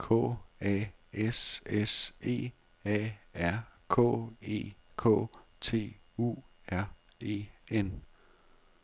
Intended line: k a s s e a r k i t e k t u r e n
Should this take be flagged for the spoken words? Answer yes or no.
yes